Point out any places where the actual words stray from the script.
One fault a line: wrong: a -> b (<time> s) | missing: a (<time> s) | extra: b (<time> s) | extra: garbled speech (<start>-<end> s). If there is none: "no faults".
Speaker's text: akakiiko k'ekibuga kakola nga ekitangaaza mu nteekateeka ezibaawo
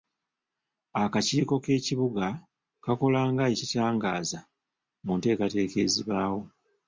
no faults